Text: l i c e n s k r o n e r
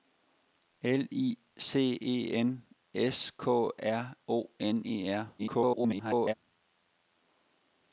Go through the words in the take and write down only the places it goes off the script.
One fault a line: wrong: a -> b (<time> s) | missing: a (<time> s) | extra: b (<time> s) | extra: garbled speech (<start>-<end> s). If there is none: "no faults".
extra: garbled speech (5.4-6.3 s)